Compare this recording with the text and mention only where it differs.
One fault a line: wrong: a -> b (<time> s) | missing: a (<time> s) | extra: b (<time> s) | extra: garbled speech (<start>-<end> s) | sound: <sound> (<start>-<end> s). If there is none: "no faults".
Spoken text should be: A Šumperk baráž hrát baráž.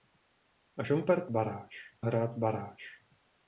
no faults